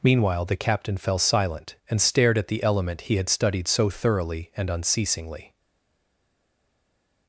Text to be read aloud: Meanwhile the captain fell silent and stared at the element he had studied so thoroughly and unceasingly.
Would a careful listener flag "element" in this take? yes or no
no